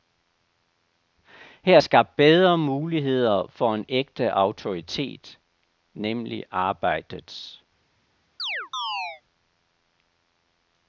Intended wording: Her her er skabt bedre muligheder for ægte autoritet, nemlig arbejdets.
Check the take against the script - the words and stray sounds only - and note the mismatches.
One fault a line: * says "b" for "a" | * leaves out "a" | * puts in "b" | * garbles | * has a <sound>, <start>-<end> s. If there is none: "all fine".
* leaves out "her"
* puts in "en"
* has a chirp, 8.4-9.2 s